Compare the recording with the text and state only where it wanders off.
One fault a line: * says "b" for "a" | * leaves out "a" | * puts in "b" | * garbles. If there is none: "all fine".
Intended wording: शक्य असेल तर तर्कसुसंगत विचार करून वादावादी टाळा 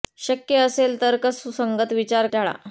* leaves out "तर"
* leaves out "करून वादावादी"